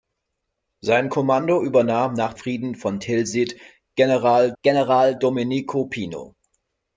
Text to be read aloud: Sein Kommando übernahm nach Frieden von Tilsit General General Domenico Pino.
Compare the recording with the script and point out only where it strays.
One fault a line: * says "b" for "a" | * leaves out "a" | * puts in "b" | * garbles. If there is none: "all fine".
all fine